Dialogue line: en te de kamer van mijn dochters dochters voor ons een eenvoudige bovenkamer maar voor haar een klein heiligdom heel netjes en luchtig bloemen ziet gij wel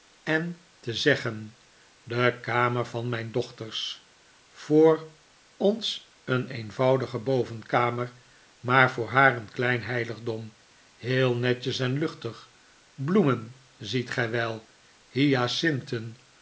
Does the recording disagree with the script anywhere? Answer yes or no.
yes